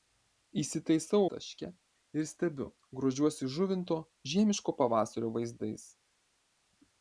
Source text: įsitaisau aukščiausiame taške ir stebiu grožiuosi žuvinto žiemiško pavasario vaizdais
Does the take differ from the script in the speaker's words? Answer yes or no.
yes